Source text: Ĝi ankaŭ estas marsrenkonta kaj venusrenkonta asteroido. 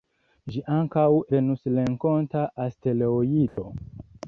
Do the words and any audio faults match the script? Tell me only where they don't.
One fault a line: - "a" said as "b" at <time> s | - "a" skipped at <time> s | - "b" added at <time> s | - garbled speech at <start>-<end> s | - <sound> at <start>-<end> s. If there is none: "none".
- "estas marsrenkonta kaj" skipped at 1.0 s
- dropout at 3.5-3.6 s